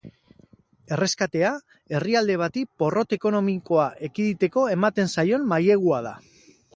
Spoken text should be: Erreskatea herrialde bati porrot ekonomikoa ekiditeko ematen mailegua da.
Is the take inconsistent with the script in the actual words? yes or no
yes